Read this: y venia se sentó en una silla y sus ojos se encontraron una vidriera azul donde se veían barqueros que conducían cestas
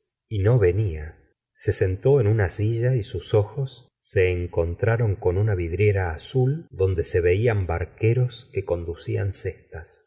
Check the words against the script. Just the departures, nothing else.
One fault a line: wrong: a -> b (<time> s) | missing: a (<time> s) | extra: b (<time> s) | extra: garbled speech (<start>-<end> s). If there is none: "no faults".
extra: no (0.4 s)
extra: con (5.2 s)